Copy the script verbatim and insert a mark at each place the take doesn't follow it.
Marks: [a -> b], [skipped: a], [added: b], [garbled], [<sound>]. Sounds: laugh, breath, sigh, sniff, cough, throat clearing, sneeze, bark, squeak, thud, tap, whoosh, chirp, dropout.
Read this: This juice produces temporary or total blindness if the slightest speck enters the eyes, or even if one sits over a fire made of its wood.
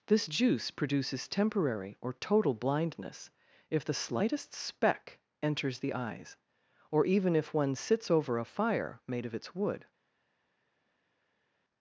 This juice produces temporary or total blindness if the slightest speck enters the eyes, or even if one sits over a fire made of its wood.